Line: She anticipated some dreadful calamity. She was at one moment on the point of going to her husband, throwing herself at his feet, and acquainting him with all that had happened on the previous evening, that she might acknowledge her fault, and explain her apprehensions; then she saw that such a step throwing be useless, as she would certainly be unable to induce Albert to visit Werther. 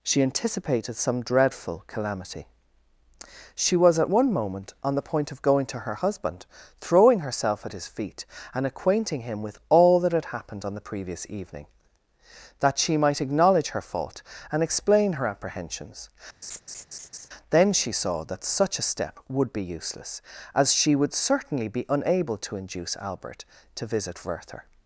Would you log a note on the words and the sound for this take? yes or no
yes